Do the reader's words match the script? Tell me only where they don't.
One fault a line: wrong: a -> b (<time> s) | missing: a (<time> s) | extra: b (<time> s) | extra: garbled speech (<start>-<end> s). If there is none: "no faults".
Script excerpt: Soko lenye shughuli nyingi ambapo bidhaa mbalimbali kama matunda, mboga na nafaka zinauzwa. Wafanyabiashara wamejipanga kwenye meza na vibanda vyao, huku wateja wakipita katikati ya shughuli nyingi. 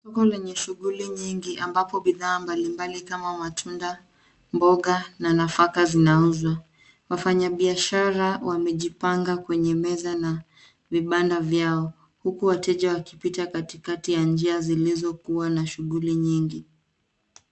extra: njia zilizokuwa na (14.2 s)